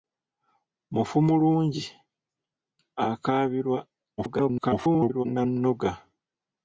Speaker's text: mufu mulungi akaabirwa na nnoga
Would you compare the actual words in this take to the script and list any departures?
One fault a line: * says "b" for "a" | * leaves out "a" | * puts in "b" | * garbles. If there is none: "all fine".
* garbles